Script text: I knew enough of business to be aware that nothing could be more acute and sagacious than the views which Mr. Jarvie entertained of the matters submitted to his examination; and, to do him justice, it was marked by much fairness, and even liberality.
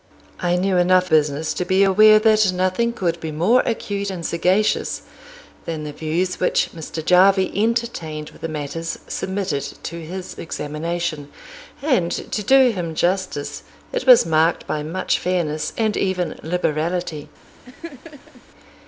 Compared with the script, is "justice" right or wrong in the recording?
right